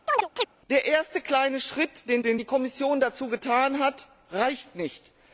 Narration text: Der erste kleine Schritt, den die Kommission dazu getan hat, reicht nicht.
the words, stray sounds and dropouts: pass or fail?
fail